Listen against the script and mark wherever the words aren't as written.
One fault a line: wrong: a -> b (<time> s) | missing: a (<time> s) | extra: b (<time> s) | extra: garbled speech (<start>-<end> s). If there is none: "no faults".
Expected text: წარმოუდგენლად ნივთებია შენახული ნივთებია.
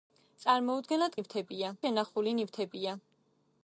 no faults